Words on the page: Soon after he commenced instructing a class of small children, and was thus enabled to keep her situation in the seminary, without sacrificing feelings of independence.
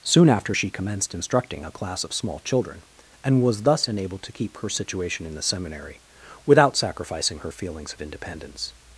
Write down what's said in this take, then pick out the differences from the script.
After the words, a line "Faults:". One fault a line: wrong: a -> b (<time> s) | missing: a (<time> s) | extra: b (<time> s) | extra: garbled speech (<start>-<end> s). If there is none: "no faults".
Soon after she commenced instructing a class of small children, and was thus enabled to keep her situation in the seminary, without sacrificing her feelings of independence.
Faults:
wrong: he -> she (0.5 s)
extra: her (7.4 s)